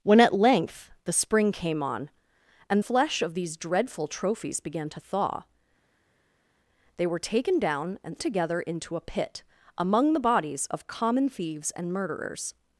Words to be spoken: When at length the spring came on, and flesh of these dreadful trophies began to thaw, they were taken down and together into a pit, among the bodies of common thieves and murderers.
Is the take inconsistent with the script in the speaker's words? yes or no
no